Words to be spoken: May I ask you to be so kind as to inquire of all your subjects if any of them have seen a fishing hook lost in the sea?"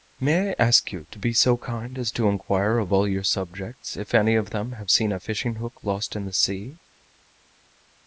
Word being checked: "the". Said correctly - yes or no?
yes